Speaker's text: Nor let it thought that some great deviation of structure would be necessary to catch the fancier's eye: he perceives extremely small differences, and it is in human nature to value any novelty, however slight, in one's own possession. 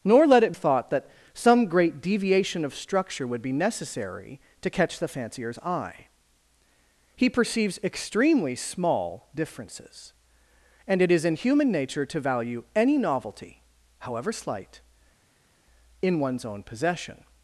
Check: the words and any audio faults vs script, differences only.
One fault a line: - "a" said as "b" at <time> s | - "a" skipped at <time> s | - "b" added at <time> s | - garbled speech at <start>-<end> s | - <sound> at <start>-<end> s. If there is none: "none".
none